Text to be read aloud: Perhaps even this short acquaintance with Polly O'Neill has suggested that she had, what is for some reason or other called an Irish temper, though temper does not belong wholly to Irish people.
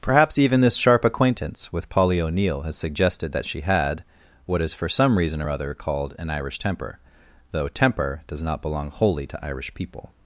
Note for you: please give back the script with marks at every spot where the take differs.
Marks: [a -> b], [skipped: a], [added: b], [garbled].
Perhaps even this [short -> sharp] acquaintance with Polly O'Neill has suggested that she had, what is for some reason or other called an Irish temper, though temper does not belong wholly to Irish people.